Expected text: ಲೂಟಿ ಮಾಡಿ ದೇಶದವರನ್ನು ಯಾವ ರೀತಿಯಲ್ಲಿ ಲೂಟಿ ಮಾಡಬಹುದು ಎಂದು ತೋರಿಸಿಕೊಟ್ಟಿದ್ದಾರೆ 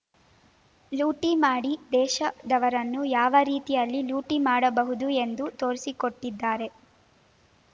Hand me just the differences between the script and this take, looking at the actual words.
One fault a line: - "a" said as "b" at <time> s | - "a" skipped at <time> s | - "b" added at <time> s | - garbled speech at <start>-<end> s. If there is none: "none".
none